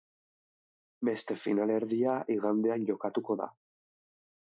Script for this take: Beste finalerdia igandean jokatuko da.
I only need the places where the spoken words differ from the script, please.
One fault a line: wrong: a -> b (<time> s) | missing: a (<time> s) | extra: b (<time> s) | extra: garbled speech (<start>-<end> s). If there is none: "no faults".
no faults